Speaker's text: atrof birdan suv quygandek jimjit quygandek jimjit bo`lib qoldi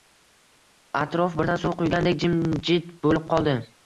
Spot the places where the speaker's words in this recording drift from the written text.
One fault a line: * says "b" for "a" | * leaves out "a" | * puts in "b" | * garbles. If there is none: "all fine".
* leaves out "quygandek jimjit"